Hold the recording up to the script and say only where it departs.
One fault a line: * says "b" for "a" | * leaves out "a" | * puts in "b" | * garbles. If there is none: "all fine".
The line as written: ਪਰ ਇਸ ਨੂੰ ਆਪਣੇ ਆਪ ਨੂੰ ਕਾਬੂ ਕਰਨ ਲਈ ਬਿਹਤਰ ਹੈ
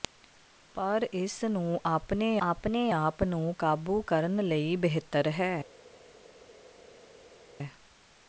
* puts in "ਆਪਣੇ"